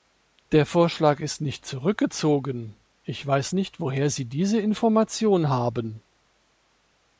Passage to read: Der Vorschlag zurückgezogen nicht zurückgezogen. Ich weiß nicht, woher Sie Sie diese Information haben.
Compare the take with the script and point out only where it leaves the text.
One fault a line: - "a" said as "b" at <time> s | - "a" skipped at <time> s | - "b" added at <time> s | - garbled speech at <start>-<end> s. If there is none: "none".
- "zurückgezogen" said as "ist" at 1.2 s
- "Sie" skipped at 4.2 s